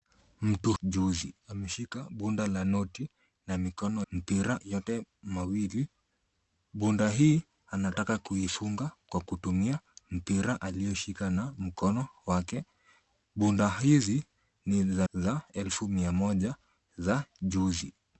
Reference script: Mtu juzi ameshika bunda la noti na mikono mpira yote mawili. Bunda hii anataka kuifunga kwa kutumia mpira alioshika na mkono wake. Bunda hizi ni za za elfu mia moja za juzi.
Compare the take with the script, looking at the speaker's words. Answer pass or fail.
pass